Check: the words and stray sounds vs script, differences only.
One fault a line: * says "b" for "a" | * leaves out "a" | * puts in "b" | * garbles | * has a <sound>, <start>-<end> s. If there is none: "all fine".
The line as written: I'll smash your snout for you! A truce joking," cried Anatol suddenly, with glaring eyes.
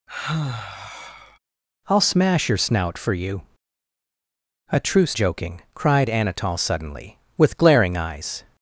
* has a sigh, 0.1-1.4 s